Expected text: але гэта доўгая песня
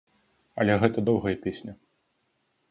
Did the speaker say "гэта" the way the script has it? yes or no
yes